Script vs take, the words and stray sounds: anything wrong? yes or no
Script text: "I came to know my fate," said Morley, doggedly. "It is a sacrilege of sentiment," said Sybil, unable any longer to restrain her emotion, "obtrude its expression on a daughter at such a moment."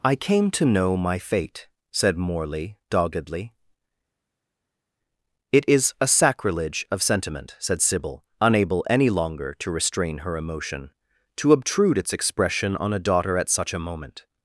yes